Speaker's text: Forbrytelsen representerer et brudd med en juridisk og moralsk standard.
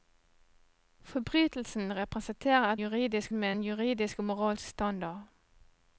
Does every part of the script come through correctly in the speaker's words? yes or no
no